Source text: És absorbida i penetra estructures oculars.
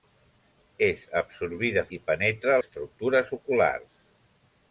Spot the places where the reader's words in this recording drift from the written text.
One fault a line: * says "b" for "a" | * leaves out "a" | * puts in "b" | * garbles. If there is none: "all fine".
all fine